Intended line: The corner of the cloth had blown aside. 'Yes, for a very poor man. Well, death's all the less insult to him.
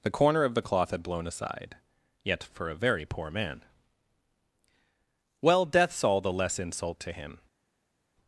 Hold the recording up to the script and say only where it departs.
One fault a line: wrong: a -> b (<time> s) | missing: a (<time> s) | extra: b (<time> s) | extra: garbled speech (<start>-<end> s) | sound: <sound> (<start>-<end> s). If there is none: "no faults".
wrong: Yes -> Yet (2.2 s)